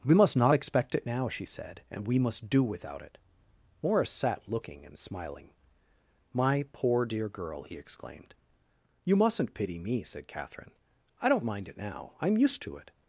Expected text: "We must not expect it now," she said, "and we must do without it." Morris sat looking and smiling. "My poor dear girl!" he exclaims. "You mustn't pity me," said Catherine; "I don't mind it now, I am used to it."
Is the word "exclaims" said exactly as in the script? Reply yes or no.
no